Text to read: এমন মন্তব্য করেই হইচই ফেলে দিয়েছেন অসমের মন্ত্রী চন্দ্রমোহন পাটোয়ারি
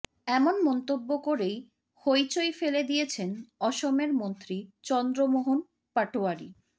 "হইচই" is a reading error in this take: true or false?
false